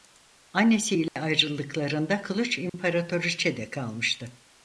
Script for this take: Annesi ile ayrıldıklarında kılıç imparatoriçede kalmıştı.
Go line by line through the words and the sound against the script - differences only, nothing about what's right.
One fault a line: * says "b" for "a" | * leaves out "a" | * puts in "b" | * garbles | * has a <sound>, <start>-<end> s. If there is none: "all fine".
* has a dropout, 1.1-1.2 s
* has a dropout, 2.7-2.7 s